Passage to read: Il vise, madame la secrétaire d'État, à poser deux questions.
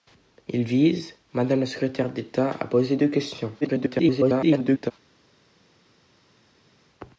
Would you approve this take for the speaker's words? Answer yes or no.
no